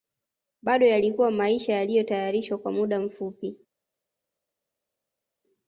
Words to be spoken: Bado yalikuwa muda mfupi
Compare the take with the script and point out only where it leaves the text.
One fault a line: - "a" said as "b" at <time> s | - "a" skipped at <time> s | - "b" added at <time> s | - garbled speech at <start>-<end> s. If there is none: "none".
- "maisha yaliyotayarishwa kwa" added at 1.3 s